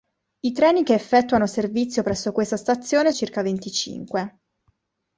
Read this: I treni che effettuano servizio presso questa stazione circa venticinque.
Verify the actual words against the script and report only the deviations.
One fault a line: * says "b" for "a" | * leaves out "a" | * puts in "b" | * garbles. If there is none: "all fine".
all fine